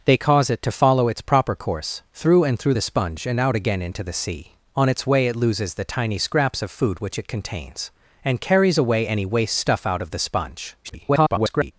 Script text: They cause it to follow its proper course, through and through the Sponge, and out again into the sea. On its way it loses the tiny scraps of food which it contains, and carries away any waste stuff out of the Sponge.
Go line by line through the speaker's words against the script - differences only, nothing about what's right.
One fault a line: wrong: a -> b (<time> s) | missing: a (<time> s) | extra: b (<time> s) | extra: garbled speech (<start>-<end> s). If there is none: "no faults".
extra: garbled speech (10.8-11.7 s)